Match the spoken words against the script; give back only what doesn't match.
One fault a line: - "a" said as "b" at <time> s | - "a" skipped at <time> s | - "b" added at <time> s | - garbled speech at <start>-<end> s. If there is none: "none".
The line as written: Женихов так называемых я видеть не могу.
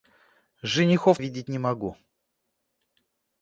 - "так называемых я" skipped at 1.2 s